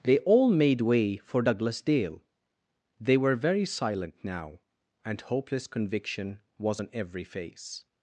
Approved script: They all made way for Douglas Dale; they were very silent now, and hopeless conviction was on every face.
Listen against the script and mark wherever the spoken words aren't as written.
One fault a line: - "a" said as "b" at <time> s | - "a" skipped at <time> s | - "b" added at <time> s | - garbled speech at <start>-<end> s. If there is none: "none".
none